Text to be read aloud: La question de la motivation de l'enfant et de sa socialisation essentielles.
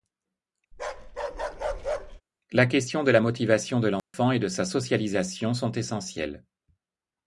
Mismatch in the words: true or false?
true